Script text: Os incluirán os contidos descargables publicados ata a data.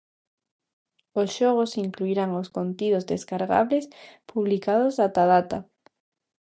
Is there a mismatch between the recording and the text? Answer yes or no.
yes